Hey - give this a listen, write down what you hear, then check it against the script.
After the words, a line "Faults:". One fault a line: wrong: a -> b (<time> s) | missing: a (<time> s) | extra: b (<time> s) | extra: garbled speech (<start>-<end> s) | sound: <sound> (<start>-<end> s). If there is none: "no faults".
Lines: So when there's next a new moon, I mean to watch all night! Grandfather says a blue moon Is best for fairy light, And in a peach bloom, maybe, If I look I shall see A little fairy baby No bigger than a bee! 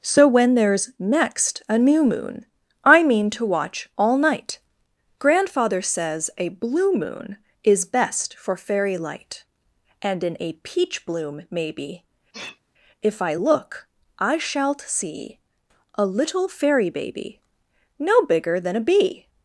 So when there's next a new moon, I mean to watch all night! Grandfather says a blue moon Is best for fairy light, And in a peach bloom, maybe, If I look I shalt see A little fairy baby No bigger than a bee!
Faults:
sound: sneeze (12.3-12.6 s)
wrong: shall -> shalt (14.4 s)